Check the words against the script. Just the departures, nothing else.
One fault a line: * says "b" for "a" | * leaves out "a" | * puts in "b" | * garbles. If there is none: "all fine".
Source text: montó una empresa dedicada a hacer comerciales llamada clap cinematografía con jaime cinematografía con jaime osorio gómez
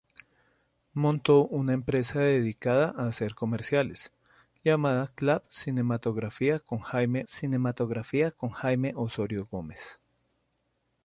all fine